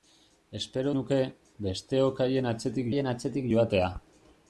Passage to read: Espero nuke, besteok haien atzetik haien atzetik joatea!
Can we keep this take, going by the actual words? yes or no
yes